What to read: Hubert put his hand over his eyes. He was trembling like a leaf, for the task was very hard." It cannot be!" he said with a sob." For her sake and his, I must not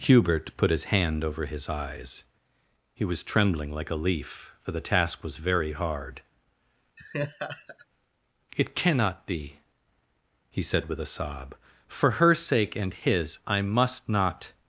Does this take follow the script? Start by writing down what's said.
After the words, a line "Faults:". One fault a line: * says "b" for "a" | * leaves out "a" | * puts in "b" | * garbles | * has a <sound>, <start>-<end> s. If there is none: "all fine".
Hubert put his hand over his eyes. He was trembling like a leaf, for the task was very hard." It cannot be!" he said with a sob." For her sake and his, I must not
Faults:
* has a laugh, 7.0-7.9 s